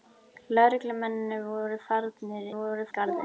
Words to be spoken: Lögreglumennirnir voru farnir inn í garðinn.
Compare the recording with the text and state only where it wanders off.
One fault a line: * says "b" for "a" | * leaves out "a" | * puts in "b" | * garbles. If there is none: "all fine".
* says "voru" for "inn"